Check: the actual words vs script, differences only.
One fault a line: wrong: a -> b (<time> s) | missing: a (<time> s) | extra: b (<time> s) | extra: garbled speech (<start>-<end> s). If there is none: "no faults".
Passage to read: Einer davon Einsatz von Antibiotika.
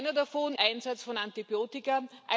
no faults